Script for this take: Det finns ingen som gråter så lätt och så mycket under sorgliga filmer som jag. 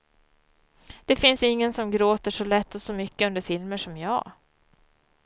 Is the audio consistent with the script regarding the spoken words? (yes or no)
no